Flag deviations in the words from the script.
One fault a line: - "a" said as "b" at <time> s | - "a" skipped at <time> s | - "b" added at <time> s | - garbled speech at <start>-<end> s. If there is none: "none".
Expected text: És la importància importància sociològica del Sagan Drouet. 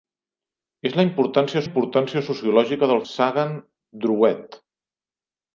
none